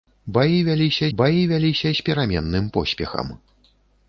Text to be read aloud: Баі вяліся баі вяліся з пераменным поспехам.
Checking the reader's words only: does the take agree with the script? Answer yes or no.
yes